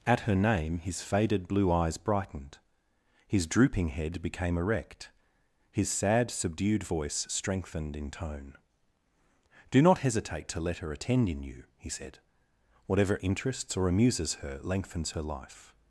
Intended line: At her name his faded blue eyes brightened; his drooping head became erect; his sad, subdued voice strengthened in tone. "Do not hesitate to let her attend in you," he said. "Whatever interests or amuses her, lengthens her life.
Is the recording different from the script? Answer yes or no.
no